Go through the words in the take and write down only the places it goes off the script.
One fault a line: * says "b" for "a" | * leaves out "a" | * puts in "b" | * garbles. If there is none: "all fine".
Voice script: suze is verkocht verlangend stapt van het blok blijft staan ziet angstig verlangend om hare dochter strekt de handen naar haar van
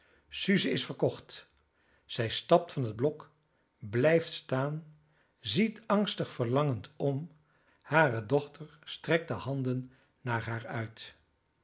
* says "zij" for "verlangend"
* says "uit" for "van"